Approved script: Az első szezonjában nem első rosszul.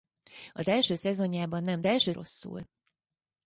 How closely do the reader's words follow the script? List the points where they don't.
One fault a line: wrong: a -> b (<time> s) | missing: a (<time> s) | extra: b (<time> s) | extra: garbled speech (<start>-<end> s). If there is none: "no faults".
no faults